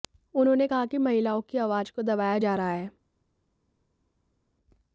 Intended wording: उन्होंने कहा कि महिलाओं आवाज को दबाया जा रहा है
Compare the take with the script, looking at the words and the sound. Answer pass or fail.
fail